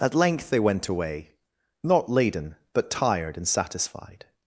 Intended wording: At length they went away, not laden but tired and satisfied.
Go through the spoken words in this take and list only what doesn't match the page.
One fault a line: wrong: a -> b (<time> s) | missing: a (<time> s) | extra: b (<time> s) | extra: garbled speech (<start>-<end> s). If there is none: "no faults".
no faults